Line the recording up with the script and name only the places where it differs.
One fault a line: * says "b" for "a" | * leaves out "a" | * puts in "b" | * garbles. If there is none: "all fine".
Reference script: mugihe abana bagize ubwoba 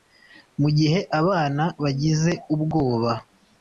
all fine